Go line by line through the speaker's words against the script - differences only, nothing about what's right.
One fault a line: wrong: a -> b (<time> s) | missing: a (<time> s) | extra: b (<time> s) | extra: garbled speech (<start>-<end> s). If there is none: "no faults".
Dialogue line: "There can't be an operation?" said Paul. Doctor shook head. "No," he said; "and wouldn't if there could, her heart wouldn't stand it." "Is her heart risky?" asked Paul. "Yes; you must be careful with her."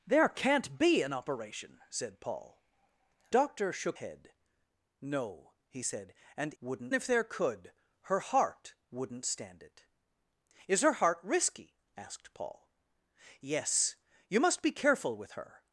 no faults